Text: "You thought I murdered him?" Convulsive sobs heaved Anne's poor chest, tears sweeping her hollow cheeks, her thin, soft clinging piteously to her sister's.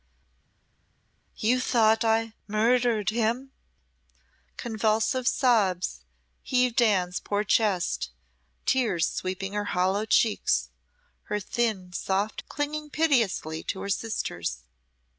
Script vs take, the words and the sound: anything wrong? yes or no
no